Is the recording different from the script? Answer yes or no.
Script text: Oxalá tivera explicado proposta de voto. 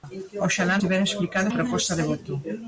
no